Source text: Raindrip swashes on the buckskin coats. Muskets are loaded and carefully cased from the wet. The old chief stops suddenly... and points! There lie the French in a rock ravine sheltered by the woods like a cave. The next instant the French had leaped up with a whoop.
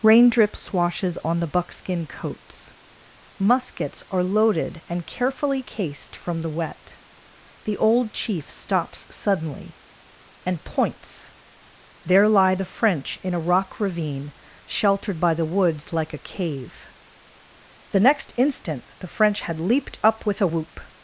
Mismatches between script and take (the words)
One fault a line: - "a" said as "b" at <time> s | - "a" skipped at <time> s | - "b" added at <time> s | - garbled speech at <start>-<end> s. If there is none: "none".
none